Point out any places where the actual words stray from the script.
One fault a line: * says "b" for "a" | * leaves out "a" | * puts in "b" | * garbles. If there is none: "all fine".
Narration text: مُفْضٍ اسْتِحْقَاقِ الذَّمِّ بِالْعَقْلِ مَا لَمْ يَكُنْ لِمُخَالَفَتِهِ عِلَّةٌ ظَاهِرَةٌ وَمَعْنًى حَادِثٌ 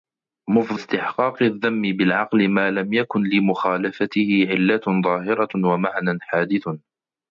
all fine